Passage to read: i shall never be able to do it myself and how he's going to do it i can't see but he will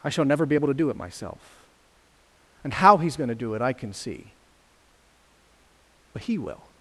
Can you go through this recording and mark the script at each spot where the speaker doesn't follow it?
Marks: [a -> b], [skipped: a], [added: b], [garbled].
i shall never be able to do it myself and how he's going to do it i [can't -> can] see but he will